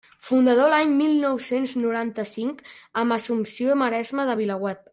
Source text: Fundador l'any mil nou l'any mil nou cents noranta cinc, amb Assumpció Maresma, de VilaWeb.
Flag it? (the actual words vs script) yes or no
yes